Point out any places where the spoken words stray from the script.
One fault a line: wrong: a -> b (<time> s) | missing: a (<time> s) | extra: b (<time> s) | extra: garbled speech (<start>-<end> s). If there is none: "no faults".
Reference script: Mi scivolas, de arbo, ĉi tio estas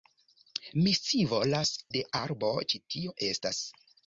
no faults